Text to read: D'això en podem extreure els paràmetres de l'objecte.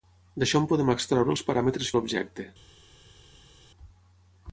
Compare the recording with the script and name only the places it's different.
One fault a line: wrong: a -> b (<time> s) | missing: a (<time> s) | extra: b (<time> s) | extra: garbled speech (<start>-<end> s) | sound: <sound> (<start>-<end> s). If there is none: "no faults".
no faults